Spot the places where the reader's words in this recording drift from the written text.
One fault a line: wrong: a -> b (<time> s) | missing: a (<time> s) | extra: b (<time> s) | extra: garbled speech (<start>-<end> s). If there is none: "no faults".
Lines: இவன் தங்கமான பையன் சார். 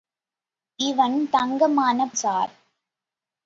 missing: பையன் (2.1 s)